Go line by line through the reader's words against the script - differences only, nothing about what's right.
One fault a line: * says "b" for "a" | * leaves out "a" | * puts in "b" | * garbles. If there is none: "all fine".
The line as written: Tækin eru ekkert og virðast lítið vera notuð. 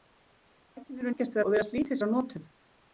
all fine